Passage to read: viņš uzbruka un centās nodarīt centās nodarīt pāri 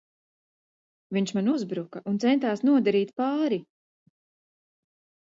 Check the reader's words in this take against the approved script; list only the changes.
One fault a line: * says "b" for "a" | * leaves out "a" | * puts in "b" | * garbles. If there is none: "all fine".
* puts in "man"
* leaves out "centās nodarīt"